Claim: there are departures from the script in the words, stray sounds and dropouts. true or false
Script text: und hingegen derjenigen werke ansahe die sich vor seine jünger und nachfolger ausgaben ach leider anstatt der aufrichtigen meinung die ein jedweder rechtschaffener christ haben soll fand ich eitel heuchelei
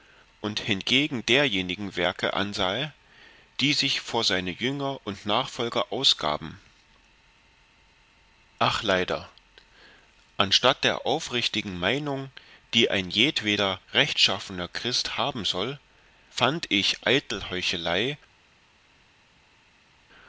false